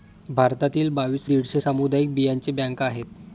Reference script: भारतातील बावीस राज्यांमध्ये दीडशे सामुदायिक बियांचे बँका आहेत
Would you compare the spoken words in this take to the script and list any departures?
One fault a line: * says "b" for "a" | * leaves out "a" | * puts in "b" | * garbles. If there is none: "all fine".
* leaves out "राज्यांमध्ये"